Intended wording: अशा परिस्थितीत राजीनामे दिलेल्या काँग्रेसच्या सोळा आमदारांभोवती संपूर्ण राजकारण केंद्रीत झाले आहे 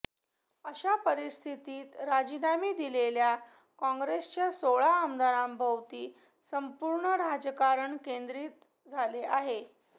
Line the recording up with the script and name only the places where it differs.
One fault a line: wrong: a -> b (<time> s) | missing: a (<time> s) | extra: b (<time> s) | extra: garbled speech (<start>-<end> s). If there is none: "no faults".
no faults